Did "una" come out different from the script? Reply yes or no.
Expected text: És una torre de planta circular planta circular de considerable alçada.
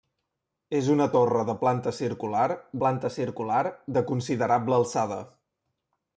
no